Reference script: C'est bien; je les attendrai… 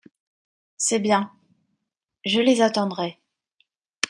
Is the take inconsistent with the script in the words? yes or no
no